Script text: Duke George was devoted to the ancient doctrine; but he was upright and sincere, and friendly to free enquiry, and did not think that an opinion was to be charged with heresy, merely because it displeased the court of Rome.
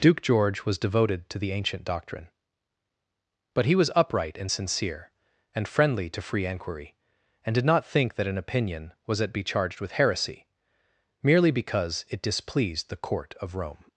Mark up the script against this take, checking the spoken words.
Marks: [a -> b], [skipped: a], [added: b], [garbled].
Duke George was devoted to the ancient doctrine; but he was upright and sincere, and friendly to free enquiry, and did not think that an opinion was [to -> at] be charged with heresy, merely because it displeased the court of Rome.